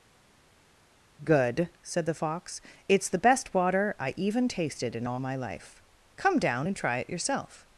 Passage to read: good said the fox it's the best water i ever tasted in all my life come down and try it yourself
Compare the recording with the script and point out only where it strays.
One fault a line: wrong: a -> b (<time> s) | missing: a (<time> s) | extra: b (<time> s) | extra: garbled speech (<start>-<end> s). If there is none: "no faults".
wrong: ever -> even (4.2 s)